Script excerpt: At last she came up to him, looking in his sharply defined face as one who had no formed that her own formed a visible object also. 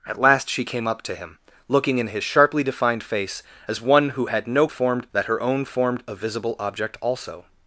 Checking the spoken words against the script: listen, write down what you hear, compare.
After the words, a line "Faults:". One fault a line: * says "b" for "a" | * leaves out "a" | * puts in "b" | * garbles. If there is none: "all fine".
At last she came up to him, looking in his sharply defined face as one who had no formed that her own formed a visible object also.
Faults:
all fine